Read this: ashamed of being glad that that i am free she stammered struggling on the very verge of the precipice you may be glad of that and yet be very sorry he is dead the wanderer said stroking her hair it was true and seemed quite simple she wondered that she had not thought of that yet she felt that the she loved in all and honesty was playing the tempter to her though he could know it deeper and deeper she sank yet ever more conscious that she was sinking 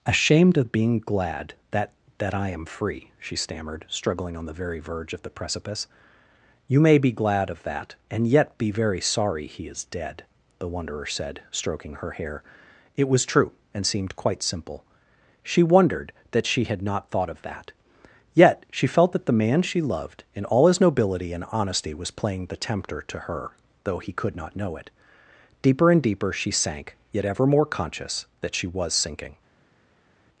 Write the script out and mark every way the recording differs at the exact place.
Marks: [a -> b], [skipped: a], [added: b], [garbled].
ashamed of being glad that that i am free she stammered struggling on the very verge of the precipice you may be glad of that and yet be very sorry he is dead the wanderer said stroking her hair it was true and seemed quite simple she wondered that she had not thought of that yet she felt that the [added: man] she loved in all [added: his nobility] and honesty was playing the tempter to her though he could [added: not] know it deeper and deeper she sank yet ever more conscious that she was sinking